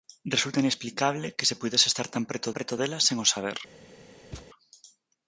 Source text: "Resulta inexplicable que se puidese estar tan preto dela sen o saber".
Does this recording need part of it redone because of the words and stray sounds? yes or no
yes